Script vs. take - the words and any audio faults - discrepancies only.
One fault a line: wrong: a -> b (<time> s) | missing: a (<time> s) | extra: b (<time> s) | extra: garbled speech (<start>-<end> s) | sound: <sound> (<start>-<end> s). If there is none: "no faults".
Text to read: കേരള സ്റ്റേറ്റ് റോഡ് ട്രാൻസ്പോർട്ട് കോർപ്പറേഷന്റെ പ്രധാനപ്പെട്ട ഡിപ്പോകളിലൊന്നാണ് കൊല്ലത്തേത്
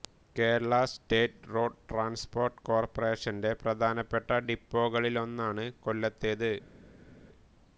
no faults